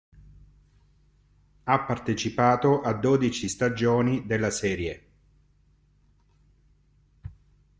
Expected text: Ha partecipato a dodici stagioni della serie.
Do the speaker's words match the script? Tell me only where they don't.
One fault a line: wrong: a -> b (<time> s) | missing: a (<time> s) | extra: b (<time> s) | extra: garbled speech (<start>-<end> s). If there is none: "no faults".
no faults